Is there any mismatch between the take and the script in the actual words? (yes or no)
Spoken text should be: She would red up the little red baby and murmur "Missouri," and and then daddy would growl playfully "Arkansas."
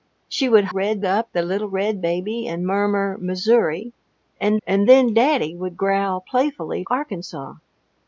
no